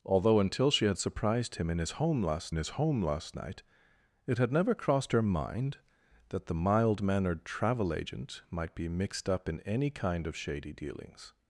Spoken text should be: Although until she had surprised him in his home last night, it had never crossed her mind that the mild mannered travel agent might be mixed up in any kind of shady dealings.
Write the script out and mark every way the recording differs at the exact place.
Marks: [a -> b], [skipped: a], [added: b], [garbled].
Although until she had surprised him in his home last [added: his home last] night, it had never crossed her mind that the mild mannered travel agent might be mixed up in any kind of shady dealings.